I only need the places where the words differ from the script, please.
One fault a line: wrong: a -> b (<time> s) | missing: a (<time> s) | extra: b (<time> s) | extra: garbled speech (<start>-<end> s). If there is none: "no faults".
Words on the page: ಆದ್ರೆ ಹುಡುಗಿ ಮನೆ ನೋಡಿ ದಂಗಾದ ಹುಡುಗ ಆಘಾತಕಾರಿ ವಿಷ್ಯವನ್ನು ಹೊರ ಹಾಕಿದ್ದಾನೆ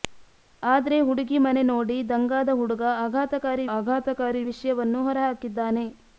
extra: ಆಘಾತಕಾರಿ (3.8 s)